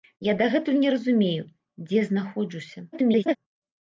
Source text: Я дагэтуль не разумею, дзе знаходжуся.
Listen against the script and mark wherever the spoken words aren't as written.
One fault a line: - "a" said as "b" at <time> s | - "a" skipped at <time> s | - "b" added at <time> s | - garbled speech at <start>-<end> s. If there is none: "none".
- garbled speech at 2.9-3.4 s